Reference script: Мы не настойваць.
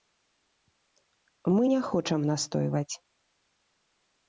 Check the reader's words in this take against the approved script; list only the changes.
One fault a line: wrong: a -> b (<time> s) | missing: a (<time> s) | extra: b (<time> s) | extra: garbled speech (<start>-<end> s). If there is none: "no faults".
extra: хочам (1.9 s)